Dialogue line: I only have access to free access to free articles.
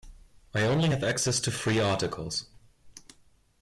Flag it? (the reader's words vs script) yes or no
yes